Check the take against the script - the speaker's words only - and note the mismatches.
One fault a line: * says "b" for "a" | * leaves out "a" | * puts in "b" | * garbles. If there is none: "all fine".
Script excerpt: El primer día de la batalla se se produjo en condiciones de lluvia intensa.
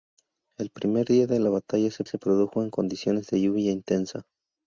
all fine